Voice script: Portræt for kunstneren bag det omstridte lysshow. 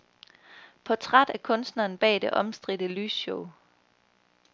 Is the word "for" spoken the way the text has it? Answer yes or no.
no